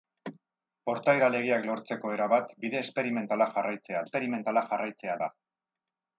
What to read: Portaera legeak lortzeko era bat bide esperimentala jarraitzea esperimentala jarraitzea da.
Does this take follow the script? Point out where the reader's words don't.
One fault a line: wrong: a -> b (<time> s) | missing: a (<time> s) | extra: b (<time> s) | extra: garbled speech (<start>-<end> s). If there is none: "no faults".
no faults